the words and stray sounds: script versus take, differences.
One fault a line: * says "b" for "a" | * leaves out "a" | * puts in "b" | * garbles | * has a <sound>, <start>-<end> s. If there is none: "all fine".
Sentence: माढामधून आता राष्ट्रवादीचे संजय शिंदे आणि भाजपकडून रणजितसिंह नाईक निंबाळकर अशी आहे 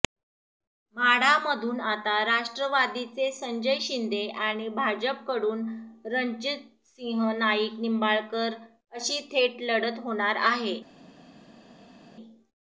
* puts in "थेट लढत होणार"